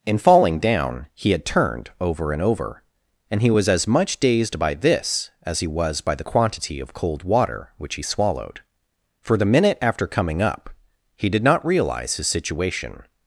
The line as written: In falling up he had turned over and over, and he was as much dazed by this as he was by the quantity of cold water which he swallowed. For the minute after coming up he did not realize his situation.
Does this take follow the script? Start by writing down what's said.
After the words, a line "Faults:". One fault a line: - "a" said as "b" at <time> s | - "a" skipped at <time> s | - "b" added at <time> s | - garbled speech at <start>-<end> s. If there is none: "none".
In falling down he had turned over and over, and he was as much dazed by this as he was by the quantity of cold water which he swallowed. For the minute after coming up he did not realize his situation.
Faults:
- "up" said as "down" at 0.6 s